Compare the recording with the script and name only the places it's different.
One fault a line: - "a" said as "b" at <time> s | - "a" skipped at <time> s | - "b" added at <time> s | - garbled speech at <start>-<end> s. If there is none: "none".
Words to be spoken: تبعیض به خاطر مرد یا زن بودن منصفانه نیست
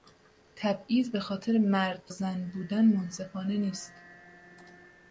- "یا" skipped at 2.1 s